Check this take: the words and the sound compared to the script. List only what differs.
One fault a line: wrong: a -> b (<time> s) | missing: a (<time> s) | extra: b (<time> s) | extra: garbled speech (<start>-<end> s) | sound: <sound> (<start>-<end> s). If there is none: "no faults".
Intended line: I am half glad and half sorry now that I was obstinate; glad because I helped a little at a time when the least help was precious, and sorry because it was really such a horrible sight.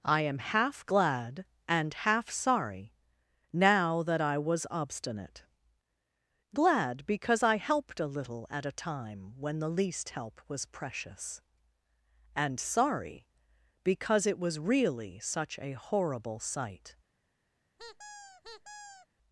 sound: squeak (17.8-19.1 s)